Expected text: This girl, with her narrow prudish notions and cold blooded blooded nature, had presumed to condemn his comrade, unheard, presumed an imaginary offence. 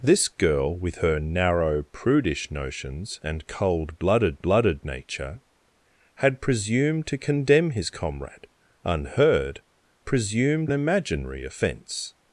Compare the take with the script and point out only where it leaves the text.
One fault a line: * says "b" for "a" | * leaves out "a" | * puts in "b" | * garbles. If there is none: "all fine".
all fine